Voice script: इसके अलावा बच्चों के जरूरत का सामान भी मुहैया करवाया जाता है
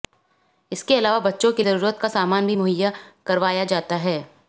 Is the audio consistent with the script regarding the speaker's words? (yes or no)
yes